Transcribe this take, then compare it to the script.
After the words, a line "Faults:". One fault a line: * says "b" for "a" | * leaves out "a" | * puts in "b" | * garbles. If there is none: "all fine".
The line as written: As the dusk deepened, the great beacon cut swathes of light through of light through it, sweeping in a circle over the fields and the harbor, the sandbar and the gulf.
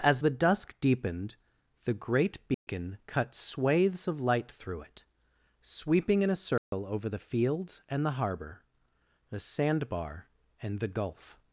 As the dusk deepened, the great beacon cut swathes of light through it, sweeping in a circle over the fields and the harbor, the sandbar and the gulf.
Faults:
* leaves out "of light through"